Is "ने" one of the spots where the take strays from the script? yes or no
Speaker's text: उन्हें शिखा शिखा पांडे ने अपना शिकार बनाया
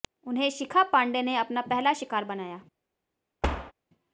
no